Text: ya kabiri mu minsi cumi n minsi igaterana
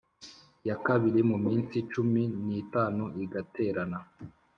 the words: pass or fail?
fail